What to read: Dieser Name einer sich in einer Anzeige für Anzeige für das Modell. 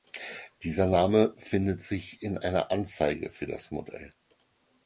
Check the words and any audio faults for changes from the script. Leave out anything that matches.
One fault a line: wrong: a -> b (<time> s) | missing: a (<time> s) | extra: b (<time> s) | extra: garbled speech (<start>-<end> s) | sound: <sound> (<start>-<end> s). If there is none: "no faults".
wrong: einer -> findet (1.4 s)
missing: Anzeige für (3.5 s)